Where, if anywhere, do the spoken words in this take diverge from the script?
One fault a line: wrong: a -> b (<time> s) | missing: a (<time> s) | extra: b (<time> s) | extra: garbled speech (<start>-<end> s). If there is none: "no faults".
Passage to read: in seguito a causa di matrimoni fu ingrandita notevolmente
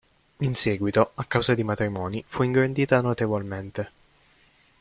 no faults